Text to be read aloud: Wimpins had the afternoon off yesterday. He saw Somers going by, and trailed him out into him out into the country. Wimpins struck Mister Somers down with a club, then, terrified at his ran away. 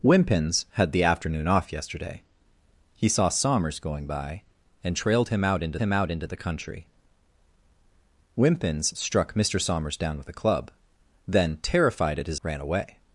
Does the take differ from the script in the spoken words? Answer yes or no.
no